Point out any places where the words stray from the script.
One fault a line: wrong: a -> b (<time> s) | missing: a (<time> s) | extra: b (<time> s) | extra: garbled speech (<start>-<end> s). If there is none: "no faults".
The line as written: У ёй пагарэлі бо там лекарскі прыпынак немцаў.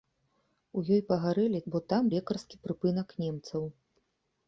no faults